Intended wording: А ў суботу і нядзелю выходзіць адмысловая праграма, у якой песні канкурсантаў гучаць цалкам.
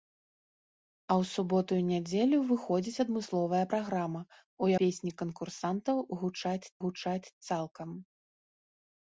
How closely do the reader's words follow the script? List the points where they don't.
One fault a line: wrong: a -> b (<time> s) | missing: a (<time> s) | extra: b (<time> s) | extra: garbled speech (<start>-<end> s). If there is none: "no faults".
missing: якой (4.7 s)
extra: гучаць (6.8 s)